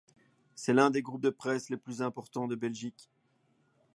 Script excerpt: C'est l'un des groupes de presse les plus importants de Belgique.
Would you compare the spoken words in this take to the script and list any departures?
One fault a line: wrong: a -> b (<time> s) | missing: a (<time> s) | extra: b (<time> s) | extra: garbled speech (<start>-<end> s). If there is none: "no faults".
no faults